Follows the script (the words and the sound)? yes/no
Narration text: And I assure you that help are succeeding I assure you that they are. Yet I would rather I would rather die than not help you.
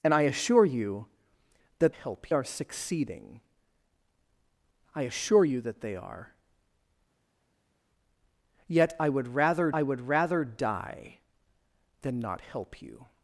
yes